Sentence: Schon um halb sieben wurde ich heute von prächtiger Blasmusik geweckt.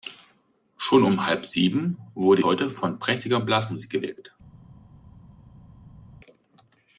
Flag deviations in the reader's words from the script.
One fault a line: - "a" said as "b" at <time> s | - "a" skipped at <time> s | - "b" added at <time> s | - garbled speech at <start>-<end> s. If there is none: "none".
- "ich" skipped at 2.4 s